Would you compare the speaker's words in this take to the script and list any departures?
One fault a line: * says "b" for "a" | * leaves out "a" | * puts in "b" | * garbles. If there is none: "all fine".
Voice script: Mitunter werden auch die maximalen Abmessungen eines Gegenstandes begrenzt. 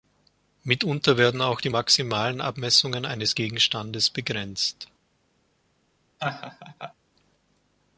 all fine